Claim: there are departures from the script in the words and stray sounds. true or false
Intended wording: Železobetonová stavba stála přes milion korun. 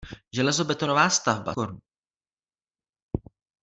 true